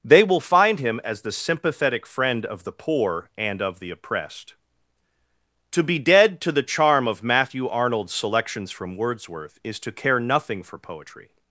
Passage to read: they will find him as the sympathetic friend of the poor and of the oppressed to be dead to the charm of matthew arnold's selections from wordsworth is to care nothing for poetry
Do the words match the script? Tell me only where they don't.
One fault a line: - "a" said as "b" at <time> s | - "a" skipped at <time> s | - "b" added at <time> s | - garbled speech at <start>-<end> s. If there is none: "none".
none